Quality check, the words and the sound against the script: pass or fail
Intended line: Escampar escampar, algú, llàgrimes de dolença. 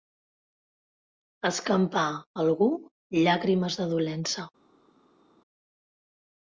fail